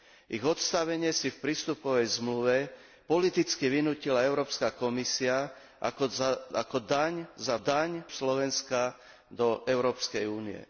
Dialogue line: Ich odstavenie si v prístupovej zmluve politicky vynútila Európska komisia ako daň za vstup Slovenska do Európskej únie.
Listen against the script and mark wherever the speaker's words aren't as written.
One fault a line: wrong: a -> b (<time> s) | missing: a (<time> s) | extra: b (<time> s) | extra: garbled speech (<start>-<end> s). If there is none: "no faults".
wrong: vstup -> daň (7.6 s)